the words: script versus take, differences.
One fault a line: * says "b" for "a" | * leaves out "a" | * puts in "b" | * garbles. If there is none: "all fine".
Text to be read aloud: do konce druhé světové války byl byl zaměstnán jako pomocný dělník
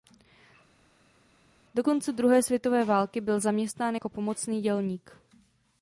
* leaves out "byl"